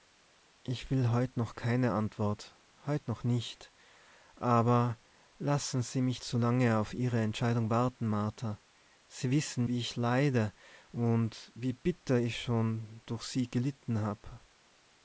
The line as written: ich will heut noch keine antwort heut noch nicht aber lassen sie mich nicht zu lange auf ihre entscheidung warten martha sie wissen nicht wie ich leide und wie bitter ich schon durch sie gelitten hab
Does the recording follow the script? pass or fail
fail